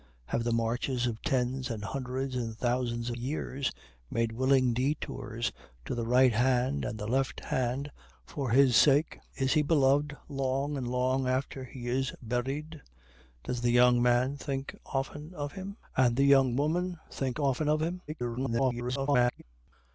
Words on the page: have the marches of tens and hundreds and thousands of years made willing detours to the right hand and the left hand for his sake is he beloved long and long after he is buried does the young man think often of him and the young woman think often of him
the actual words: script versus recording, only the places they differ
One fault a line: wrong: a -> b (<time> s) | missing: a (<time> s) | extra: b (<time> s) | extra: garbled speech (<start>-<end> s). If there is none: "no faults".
missing: of (3.1 s)
extra: garbled speech (18.1-19.4 s)